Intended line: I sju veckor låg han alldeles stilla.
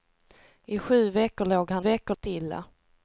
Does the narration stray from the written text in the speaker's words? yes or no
yes